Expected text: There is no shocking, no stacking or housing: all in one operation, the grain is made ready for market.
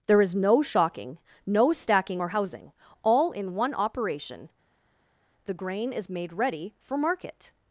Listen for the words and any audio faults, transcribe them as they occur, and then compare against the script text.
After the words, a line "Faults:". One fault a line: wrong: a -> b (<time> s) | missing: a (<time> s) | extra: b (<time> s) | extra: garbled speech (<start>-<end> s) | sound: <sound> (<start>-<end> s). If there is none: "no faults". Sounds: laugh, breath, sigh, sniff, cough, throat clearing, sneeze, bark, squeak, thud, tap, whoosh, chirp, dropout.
There is no shocking, no stacking or housing: all in one operation, the grain is made ready for market.
Faults:
no faults